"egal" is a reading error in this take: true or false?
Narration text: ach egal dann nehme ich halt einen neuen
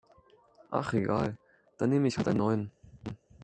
false